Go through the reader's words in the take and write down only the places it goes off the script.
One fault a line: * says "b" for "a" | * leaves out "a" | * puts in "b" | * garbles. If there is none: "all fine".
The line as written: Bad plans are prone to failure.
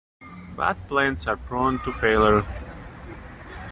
all fine